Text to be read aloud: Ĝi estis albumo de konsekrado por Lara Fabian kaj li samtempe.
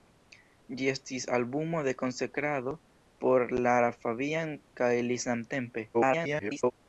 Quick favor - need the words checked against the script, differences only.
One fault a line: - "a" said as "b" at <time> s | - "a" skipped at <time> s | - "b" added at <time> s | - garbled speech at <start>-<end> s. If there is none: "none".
- garbled speech at 5.9-6.7 s